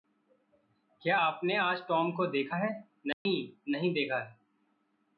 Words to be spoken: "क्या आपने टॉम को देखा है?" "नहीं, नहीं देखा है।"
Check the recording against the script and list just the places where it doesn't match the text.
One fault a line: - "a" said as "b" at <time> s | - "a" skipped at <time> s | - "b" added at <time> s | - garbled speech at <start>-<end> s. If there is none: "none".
- "आज" added at 1.6 s